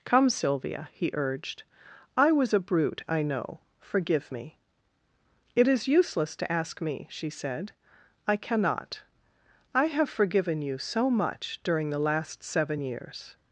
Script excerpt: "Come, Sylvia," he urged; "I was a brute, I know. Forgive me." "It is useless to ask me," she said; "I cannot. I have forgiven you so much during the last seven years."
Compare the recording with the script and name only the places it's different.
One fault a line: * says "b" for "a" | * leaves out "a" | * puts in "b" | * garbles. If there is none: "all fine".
all fine